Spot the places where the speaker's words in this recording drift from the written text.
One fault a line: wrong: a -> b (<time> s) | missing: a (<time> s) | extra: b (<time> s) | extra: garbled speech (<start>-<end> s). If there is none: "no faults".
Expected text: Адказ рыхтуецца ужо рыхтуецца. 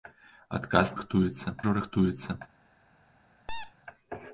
no faults